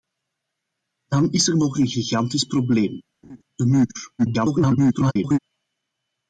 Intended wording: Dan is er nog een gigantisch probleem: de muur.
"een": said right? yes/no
yes